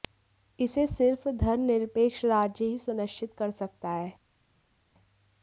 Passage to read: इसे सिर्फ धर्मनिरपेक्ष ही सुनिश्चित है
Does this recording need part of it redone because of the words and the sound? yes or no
yes